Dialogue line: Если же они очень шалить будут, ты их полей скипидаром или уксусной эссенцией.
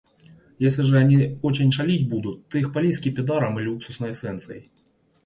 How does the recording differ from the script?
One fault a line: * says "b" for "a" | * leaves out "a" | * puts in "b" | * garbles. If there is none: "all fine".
all fine